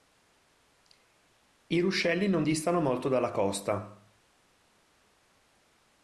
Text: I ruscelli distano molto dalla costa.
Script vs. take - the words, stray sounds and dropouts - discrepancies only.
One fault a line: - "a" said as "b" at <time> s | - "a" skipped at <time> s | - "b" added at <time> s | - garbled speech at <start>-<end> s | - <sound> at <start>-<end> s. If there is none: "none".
- "non" added at 2.3 s